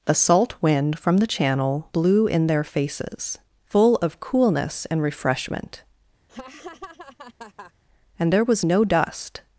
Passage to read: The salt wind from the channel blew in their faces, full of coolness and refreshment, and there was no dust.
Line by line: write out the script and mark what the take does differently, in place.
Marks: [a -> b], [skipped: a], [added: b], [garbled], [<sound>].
The salt wind from the channel blew in their faces, full of coolness and refreshment, [laugh] and there was no dust.